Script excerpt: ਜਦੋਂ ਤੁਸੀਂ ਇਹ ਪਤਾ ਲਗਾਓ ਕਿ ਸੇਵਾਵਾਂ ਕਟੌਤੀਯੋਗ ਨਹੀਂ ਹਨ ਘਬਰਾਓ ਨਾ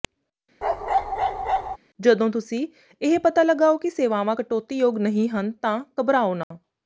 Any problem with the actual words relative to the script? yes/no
yes